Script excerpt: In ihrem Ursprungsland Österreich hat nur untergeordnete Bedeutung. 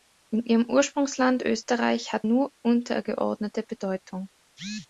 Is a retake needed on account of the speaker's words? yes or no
no